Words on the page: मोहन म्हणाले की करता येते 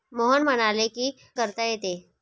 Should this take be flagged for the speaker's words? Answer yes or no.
no